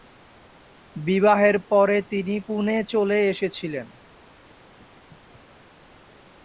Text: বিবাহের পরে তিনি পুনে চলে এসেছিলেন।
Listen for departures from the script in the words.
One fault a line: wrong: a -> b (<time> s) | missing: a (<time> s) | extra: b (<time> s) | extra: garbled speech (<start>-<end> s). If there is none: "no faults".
no faults